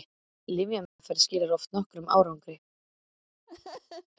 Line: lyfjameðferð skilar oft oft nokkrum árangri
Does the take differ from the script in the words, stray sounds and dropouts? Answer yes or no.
yes